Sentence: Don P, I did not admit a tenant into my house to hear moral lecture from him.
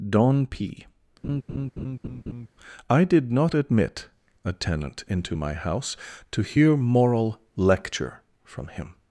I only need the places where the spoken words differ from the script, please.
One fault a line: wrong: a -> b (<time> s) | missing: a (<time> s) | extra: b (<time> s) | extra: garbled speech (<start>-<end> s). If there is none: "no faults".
no faults